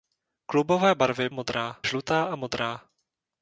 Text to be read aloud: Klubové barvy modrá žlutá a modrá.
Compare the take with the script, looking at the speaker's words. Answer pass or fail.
pass